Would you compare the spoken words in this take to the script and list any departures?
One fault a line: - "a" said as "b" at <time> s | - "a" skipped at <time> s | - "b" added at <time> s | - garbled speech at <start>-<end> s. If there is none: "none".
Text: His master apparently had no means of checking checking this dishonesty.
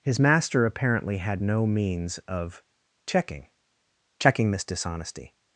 none